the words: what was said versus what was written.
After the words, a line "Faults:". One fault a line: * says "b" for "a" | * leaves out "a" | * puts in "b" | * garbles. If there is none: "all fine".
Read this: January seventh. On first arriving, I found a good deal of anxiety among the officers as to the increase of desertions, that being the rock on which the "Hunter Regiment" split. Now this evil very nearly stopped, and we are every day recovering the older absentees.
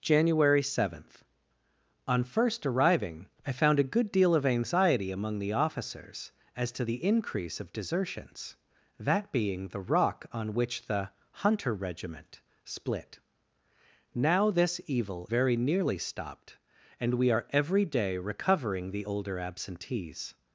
January seventh. On first arriving, I found a good deal of anxiety among the officers as to the increase of desertions, that being the rock on which the "Hunter Regiment" split. Now this evil very nearly stopped, and we are every day recovering the older absentees.
Faults:
all fine